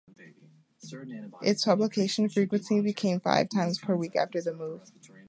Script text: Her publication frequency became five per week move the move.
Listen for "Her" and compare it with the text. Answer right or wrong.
wrong